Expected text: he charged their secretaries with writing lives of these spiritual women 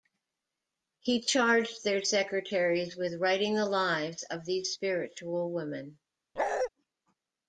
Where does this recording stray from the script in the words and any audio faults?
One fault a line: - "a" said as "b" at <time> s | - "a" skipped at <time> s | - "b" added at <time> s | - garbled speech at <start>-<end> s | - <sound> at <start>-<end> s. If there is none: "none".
- "the" added at 3.5 s
- bark at 6.4-6.7 s